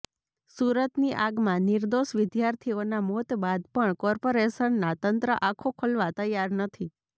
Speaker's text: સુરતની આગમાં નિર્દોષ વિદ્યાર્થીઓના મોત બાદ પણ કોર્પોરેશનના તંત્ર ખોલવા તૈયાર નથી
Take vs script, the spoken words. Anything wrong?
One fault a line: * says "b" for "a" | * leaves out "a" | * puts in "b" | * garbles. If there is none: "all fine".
* puts in "આંખો"